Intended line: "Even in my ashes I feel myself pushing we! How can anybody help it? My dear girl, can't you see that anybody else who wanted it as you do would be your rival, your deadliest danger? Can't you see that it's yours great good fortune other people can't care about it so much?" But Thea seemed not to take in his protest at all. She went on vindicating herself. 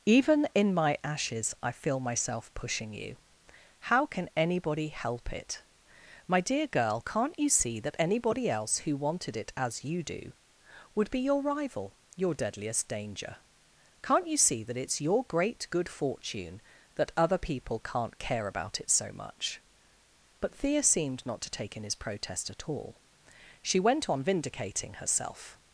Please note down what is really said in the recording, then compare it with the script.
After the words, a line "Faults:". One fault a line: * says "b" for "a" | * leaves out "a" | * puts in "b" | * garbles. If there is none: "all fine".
"Even in my ashes I feel myself pushing you! How can anybody help it? My dear girl, can't you see that anybody else who wanted it as you do would be your rival, your deadliest danger? Can't you see that it's your great good fortune that other people can't care about it so much?" But Thea seemed not to take in his protest at all. She went on vindicating herself.
Faults:
* says "you" for "we"
* says "your" for "yours"
* puts in "that"